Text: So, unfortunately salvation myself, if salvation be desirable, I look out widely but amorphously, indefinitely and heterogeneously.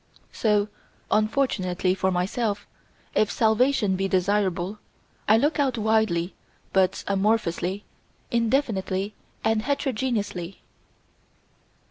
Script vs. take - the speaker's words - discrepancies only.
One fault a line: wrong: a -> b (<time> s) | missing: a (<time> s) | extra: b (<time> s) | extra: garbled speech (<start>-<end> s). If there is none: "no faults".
wrong: salvation -> for (1.9 s)